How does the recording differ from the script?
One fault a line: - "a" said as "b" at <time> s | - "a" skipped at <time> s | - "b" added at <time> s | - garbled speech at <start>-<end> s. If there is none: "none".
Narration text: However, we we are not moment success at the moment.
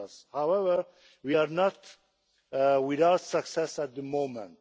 - "we" skipped at 1.4 s
- "moment" said as "without" at 2.5 s